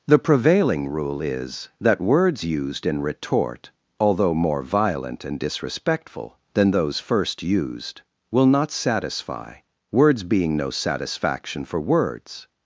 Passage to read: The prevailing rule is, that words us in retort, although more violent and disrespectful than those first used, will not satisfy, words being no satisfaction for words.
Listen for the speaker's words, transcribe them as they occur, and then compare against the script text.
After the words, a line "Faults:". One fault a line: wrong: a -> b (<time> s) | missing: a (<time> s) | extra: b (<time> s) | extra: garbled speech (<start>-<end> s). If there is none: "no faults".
The prevailing rule is, that words used in retort, although more violent and disrespectful than those first used, will not satisfy, words being no satisfaction for words.
Faults:
wrong: us -> used (2.4 s)